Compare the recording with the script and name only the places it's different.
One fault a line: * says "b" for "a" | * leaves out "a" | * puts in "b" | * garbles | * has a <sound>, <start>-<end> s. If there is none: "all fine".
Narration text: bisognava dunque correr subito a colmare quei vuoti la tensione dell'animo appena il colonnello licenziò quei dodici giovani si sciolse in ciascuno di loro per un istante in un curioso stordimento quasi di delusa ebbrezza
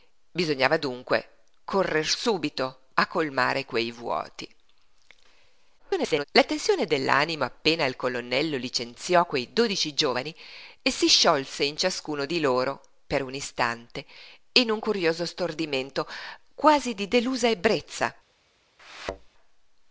* garbles
* has a thud, 18.8-19.3 s